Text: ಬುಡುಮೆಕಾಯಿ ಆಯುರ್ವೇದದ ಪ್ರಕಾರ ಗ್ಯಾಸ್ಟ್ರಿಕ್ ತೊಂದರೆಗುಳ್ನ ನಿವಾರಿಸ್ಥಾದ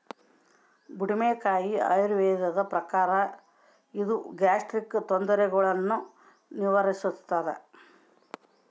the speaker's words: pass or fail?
fail